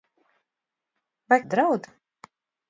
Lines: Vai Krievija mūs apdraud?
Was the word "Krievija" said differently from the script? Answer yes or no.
yes